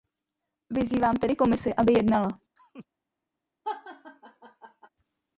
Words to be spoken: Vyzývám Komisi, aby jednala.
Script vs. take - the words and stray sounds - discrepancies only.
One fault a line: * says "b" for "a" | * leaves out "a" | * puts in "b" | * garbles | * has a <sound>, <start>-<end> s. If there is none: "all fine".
* puts in "tedy"
* has a laugh, 2.6-2.9 s
* has a laugh, 3.6-4.9 s